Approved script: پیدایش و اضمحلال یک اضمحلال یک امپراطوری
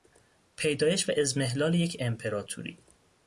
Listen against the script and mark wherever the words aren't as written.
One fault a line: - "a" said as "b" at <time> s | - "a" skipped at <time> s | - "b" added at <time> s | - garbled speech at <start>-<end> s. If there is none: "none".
- "اضمحلال یک" skipped at 2.0 s